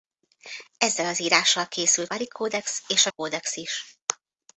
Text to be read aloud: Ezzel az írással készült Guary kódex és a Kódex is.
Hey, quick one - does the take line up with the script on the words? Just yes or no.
yes